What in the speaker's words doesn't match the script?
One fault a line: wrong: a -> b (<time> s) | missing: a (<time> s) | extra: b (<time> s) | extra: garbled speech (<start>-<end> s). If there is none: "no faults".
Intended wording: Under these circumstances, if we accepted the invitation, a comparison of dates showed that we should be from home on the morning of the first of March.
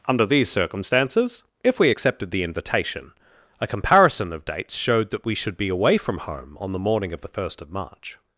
extra: away (5.7 s)